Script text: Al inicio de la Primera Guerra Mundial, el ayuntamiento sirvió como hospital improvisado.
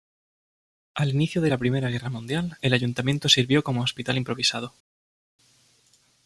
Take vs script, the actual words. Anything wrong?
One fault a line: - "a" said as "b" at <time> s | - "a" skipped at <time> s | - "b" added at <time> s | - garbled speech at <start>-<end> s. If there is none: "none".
none